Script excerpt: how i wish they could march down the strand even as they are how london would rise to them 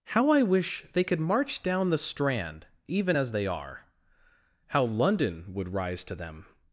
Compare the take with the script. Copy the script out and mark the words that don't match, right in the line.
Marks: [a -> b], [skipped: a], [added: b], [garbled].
how i wish they could march down the strand even as they are how london would rise to them